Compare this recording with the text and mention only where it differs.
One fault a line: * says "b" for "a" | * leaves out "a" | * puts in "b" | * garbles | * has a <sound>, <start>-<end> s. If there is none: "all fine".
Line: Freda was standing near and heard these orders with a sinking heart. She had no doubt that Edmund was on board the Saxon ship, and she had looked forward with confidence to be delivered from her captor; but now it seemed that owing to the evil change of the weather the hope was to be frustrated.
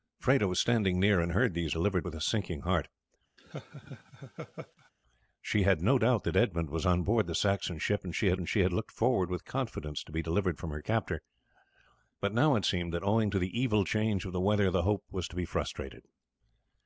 * says "delivered" for "orders"
* has a laugh, 3.4-4.9 s
* puts in "and she had"